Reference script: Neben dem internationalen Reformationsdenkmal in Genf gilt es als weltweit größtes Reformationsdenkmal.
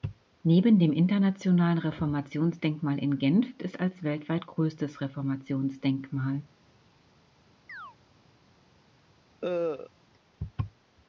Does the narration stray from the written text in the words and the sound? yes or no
yes